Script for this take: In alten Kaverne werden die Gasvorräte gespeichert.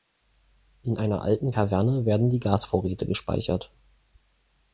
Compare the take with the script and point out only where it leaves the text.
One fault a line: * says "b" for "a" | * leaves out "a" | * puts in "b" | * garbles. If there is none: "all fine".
* puts in "einer"